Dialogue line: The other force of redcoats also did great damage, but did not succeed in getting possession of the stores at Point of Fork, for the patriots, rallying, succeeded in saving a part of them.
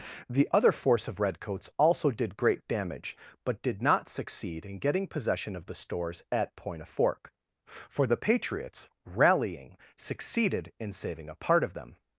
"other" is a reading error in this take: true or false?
false